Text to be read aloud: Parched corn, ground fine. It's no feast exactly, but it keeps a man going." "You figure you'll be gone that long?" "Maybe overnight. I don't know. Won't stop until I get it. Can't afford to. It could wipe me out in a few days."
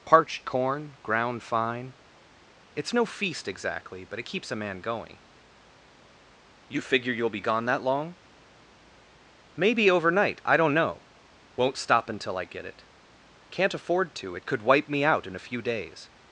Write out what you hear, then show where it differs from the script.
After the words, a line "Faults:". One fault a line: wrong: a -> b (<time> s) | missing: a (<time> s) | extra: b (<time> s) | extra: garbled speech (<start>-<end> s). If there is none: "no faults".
Parched corn, ground fine. It's no feast exactly, but it keeps a man going." "You figure you'll be gone that long?" "Maybe overnight. I don't know. Won't stop until I get it. Can't afford to. It could wipe me out in a few days."
Faults:
no faults